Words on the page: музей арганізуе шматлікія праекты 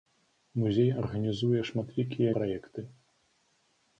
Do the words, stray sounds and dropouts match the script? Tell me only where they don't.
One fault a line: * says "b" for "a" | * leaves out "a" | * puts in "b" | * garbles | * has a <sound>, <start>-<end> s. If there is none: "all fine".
all fine